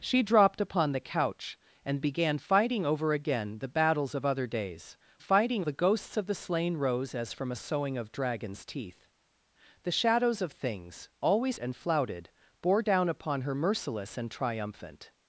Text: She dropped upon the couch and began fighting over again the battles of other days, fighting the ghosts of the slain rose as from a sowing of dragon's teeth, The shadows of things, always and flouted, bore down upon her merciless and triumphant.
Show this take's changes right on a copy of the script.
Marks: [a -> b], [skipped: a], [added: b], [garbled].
She dropped upon the couch and began fighting over again the battles of other days, fighting the ghosts of the slain rose as from a sowing of dragon's teeth, The shadows of things, always and flouted, bore down upon her merciless and triumphant.